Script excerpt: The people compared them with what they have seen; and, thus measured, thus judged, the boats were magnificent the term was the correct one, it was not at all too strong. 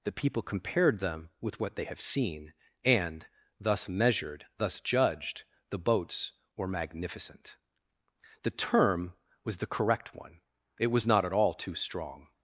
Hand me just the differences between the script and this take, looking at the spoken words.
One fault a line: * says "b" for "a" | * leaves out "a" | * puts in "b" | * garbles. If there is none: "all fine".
all fine